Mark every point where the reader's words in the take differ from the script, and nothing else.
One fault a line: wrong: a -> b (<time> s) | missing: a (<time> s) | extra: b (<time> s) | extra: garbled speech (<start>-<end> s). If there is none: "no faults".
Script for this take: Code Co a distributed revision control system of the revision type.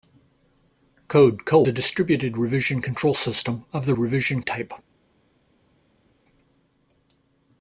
no faults